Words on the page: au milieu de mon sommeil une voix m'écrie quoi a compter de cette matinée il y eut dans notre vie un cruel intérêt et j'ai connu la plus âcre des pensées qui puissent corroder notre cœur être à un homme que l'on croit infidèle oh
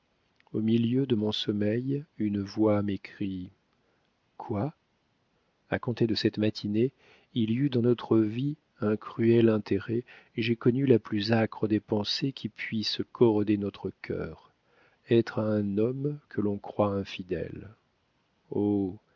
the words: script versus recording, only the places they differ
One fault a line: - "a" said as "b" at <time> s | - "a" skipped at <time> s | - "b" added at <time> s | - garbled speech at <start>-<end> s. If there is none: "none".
none